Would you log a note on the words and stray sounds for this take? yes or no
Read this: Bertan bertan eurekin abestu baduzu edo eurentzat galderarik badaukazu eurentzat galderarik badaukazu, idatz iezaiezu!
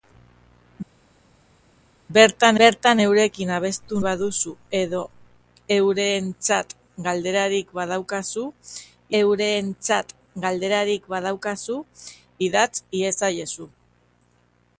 no